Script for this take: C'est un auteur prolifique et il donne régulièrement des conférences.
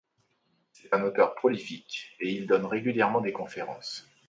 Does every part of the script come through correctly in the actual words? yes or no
yes